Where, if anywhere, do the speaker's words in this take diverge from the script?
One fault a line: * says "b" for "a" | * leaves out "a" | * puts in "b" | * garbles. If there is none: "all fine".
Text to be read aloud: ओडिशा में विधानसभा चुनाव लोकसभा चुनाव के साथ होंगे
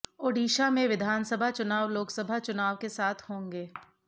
all fine